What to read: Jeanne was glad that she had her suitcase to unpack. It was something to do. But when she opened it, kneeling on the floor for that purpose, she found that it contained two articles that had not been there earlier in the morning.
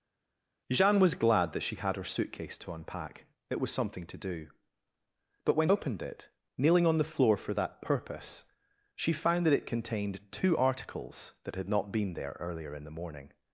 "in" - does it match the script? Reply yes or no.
yes